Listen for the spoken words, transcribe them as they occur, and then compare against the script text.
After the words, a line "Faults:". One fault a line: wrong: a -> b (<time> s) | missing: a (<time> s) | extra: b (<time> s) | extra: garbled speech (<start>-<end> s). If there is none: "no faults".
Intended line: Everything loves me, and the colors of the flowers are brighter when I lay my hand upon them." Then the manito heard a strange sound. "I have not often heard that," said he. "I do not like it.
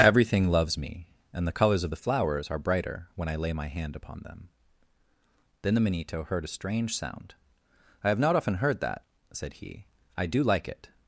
Everything loves me, and the colors of the flowers are brighter when I lay my hand upon them." Then the manito heard a strange sound. "I have not often heard that," said he. "I do like it.
Faults:
missing: not (10.4 s)